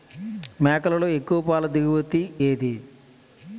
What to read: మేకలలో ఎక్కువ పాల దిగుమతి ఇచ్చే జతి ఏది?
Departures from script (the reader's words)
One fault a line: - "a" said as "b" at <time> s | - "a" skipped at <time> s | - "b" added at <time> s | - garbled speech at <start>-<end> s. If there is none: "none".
- "ఇచ్చే జతి" skipped at 2.2 s